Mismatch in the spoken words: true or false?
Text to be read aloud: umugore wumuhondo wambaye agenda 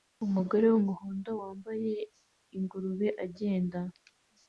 true